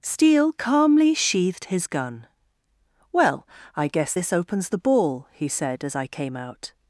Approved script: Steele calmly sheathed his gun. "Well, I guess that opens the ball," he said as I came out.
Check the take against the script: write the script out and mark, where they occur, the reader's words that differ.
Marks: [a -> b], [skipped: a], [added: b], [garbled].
Steele calmly sheathed his gun. "Well, I guess [that -> this] opens the ball," he said as I came out.